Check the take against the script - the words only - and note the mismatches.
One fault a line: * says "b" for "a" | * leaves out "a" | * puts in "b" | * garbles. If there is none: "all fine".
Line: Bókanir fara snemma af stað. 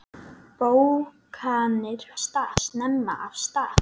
* says "stað" for "fara"